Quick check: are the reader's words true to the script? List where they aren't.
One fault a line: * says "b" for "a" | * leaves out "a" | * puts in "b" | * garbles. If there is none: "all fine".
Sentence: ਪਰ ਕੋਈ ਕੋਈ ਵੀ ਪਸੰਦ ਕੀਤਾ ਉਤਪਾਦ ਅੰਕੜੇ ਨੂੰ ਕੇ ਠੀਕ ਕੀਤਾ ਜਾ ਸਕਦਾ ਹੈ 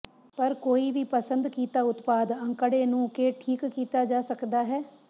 * leaves out "ਕੋਈ"